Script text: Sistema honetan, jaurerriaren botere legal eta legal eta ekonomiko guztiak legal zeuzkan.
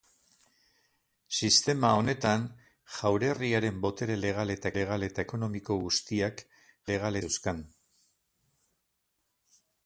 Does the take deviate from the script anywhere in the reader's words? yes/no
no